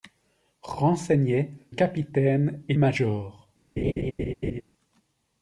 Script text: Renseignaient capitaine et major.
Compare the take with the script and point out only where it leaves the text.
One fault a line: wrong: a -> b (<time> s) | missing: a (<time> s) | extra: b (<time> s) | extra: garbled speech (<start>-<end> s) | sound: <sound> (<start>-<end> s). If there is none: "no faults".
sound: laugh (3.8-4.6 s)